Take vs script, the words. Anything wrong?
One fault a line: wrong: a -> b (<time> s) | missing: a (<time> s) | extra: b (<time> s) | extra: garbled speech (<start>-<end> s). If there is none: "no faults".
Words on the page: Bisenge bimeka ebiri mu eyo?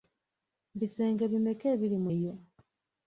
no faults